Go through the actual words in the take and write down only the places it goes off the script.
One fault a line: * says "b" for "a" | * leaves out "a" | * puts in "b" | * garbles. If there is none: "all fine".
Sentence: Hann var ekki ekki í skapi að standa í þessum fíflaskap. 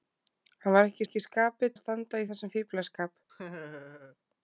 all fine